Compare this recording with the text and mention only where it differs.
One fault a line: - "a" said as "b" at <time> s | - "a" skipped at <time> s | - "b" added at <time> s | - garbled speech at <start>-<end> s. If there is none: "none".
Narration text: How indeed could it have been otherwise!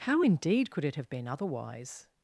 none